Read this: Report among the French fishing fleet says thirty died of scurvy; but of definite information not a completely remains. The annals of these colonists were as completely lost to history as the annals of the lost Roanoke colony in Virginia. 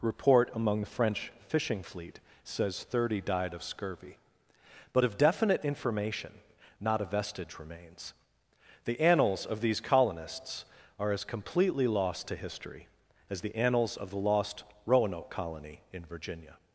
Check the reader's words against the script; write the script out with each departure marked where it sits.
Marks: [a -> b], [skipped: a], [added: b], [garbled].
Report among the French fishing fleet says thirty died of scurvy; but of definite information not a [completely -> vestige] remains. The annals of these colonists [were -> are] as completely lost to history as the annals of the lost Roanoke colony in Virginia.